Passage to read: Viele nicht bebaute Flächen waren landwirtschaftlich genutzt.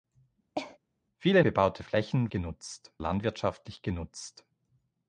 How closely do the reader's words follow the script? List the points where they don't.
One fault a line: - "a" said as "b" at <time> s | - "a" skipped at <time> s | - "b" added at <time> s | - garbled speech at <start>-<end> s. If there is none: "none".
- "nicht" skipped at 1.4 s
- "waren" said as "genutzt" at 2.3 s